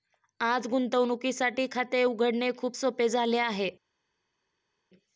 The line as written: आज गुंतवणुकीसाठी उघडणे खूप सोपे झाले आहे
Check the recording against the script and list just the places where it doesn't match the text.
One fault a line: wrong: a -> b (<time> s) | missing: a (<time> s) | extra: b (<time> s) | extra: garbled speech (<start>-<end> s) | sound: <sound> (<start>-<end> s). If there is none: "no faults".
extra: खाते (1.7 s)